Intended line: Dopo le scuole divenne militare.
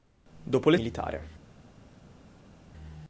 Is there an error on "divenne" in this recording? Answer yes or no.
yes